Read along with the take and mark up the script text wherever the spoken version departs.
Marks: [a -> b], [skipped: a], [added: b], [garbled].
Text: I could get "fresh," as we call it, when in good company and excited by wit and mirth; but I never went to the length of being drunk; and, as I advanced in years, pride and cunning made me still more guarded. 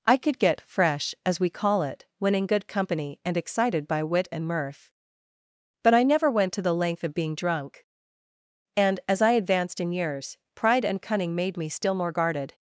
I could get "fresh," as we call it, when in good company and excited by wit and mirth; but I never went to the length of being drunk; and, as I advanced in years, pride and cunning made me still more guarded.